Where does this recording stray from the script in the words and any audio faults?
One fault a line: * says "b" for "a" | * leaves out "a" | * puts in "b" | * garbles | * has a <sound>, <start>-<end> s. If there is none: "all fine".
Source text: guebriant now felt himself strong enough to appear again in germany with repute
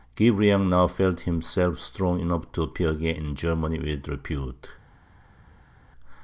all fine